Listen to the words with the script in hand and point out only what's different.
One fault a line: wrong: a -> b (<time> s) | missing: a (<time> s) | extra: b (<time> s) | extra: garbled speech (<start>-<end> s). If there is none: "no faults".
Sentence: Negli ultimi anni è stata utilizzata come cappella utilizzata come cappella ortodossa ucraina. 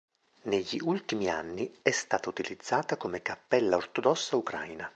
missing: utilizzata come cappella (3.8 s)